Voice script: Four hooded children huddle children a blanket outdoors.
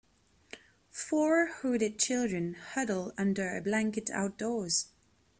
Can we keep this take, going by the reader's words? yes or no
no